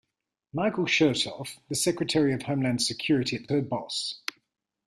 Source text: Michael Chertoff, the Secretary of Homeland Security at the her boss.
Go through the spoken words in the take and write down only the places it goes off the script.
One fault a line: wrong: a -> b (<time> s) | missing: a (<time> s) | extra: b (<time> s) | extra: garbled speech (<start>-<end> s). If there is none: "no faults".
no faults